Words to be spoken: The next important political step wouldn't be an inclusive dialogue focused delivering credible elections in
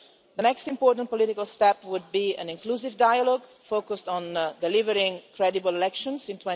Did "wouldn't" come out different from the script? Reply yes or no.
yes